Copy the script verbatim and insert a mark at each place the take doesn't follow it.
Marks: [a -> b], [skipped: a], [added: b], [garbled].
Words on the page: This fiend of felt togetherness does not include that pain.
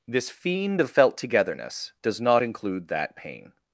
This fiend of felt togetherness does not include that pain.